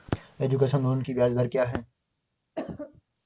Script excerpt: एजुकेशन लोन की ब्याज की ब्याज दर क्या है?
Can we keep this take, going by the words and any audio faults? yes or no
no